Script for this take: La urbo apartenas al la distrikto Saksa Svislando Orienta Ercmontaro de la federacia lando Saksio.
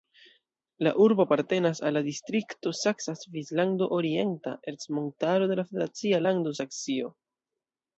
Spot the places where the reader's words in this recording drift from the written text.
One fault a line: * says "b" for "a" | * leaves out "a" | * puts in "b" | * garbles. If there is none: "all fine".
all fine